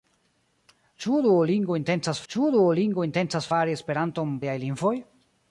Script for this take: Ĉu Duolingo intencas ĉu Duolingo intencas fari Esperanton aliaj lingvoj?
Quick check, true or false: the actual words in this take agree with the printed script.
true